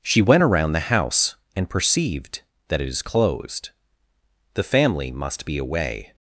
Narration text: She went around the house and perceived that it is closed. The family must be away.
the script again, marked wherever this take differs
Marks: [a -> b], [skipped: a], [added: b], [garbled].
She went around the house and perceived that it is closed. The family must be away.